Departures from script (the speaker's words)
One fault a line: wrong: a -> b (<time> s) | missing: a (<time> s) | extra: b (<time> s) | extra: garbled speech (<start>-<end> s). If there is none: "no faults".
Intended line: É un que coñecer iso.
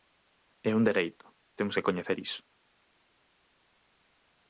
extra: dereito temos (0.9 s)